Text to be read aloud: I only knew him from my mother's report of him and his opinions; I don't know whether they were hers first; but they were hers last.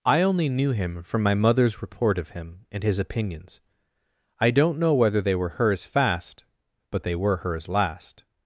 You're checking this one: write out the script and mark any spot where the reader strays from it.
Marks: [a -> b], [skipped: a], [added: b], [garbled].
I only knew him from my mother's report of him and his opinions; I don't know whether they were hers [first; -> fast] but they were hers last.